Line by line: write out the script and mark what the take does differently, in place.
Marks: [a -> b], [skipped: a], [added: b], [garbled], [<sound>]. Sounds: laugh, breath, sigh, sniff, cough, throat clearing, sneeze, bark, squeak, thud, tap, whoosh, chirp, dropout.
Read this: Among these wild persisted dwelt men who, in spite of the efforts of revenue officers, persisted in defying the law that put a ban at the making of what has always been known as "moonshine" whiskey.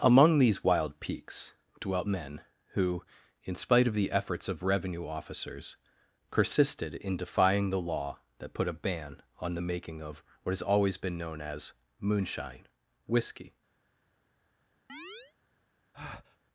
Among these wild [persisted -> peaks] dwelt men who, in spite of the efforts of revenue officers, persisted in defying the law that put a ban [at -> on] the making of what has always been known as "moonshine" whiskey. [chirp] [breath]